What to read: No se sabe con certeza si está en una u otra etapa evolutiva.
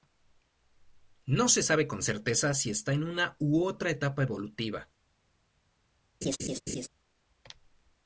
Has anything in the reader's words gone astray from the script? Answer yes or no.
no